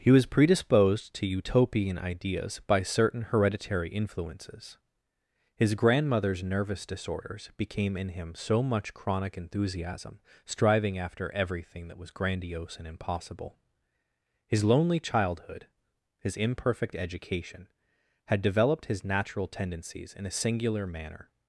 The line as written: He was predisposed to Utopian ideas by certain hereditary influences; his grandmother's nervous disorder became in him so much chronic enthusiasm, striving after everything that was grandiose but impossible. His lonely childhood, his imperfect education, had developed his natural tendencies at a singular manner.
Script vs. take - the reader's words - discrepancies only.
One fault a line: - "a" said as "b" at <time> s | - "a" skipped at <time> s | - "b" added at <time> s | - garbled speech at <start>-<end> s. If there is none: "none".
- "disorder" said as "disorders" at 6.9 s
- "but" said as "and" at 12.8 s
- "at" said as "in" at 20.1 s